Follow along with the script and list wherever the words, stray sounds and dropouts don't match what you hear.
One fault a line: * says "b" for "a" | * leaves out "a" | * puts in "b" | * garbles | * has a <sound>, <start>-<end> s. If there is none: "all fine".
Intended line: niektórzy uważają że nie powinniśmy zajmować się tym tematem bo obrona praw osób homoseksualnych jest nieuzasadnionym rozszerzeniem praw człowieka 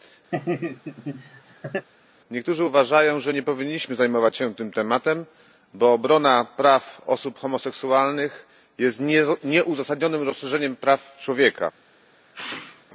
* has a laugh, 0.3-1.9 s
* has a sneeze, 12.3-12.9 s